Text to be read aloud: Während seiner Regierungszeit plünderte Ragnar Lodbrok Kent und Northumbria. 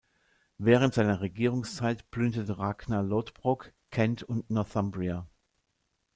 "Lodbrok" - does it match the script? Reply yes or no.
yes